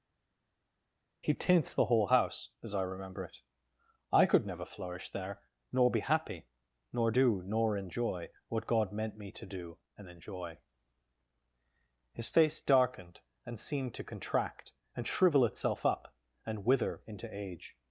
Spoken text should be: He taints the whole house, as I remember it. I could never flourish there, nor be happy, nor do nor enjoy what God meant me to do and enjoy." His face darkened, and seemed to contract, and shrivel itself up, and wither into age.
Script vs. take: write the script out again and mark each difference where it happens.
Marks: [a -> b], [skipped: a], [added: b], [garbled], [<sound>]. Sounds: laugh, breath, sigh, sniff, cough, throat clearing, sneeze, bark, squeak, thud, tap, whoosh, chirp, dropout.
He taints the whole house, as I remember it. I could never flourish there, nor be happy, nor do nor enjoy what God meant me to do and enjoy." His face darkened, and seemed to contract, and shrivel itself up, and wither into age.